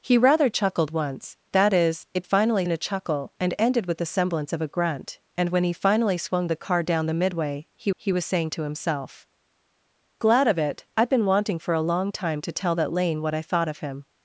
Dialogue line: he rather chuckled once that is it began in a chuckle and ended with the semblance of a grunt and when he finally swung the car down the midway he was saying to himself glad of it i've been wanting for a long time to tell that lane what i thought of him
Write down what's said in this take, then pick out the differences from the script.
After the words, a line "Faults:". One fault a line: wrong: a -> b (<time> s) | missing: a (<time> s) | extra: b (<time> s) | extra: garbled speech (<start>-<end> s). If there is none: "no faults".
he rather chuckled once that is it finally in a chuckle and ended with the semblance of a grunt and when he finally swung the car down the midway he he was saying to himself glad of it i've been wanting for a long time to tell that lane what i thought of him
Faults:
wrong: began -> finally (2.2 s)
extra: he (7.9 s)